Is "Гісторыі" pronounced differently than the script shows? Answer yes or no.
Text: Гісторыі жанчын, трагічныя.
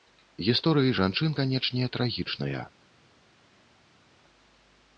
no